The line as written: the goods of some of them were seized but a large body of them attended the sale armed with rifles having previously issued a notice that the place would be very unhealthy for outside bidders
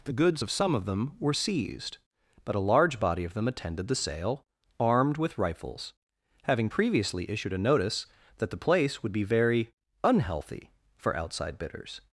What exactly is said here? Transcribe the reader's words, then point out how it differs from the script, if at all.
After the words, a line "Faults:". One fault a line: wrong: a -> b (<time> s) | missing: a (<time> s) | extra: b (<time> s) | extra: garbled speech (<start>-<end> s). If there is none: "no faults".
the goods of some of them were seized but a large body of them attended the sale armed with rifles having previously issued a notice that the place would be very unhealthy for outside bidders
Faults:
no faults